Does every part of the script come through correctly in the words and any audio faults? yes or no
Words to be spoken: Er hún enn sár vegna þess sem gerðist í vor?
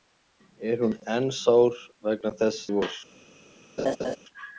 no